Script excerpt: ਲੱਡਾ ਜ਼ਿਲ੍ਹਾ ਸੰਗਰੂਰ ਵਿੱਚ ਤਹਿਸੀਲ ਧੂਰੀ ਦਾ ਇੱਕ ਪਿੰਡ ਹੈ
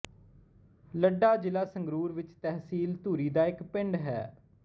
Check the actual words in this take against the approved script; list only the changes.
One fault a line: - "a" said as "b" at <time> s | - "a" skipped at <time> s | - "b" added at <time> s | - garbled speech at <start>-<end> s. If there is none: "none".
none